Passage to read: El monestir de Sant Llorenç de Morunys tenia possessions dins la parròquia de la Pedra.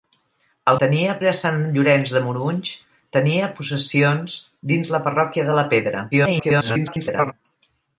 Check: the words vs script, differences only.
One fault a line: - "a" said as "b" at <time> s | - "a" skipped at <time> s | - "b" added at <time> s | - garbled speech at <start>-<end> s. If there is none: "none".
- "monestir" said as "tenia" at 0.8 s
- garbled speech at 6.1-7.3 s